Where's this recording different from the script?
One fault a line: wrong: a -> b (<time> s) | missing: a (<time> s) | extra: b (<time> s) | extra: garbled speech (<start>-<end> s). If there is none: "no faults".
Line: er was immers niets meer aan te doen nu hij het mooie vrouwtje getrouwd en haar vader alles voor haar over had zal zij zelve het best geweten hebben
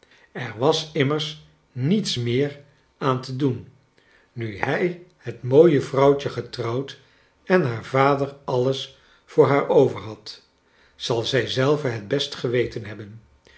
no faults